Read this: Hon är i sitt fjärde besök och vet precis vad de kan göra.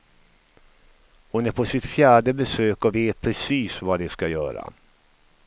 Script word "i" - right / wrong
wrong